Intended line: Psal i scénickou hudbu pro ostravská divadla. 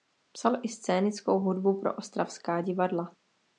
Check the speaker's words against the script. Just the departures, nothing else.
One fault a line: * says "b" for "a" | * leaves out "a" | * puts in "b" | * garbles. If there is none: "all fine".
all fine